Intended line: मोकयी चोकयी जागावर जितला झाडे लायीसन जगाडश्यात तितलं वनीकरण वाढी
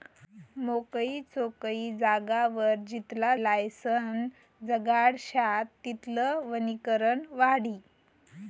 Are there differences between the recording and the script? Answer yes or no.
yes